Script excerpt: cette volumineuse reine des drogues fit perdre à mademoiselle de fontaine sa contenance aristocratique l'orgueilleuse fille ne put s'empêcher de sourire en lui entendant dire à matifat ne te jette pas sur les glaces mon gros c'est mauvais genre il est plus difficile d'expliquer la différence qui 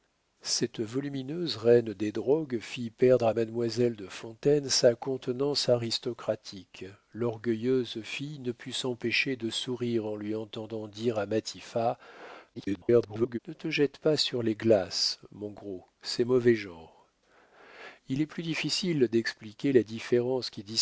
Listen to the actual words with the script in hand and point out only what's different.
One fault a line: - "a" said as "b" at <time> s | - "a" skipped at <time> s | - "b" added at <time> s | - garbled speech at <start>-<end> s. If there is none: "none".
- garbled speech at 12.5-13.4 s